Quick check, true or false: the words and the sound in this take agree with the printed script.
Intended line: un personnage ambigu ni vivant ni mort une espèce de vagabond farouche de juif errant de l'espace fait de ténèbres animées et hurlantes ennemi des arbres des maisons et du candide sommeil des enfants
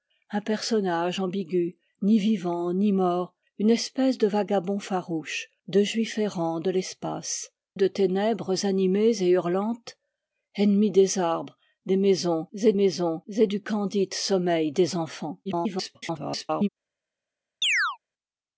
false